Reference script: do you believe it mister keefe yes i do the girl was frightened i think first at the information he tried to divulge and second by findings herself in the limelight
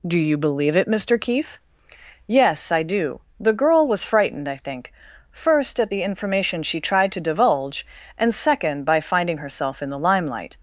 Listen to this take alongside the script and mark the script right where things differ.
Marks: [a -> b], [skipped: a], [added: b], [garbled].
do you believe it mister keefe yes i do the girl was frightened i think first at the information [he -> she] tried to divulge and second by [findings -> finding] herself in the limelight